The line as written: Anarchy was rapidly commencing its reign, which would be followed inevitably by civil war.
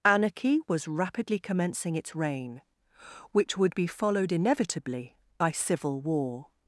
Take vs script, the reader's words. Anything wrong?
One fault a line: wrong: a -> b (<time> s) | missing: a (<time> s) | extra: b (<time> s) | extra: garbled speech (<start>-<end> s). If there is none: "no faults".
no faults